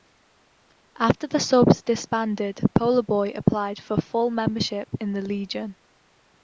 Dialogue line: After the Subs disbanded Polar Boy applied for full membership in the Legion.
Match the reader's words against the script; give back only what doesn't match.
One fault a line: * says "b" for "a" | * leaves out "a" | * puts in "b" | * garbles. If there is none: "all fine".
all fine